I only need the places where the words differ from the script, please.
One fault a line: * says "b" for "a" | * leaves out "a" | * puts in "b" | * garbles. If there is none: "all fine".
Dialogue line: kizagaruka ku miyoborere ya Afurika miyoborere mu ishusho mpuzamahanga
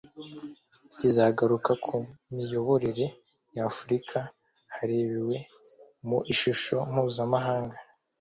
* says "harebewe" for "miyoborere"